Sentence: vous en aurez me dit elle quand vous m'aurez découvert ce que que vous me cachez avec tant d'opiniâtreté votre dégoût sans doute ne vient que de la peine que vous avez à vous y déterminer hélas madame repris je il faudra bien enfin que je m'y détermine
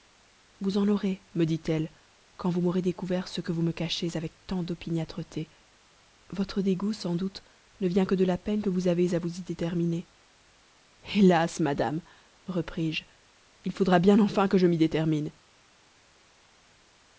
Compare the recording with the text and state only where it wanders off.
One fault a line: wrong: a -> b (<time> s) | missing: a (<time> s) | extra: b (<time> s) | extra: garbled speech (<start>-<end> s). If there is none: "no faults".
missing: que (3.5 s)